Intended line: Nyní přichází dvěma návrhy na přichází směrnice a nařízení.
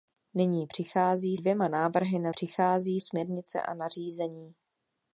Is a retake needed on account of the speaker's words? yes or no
no